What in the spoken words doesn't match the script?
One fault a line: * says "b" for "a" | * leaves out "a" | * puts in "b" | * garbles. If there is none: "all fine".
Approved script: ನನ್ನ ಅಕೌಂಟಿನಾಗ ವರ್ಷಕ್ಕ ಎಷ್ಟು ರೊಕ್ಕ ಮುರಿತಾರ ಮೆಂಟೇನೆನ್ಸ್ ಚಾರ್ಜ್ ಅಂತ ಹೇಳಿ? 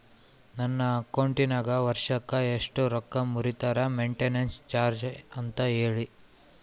all fine